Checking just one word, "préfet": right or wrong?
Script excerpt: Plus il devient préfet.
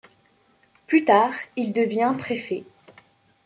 right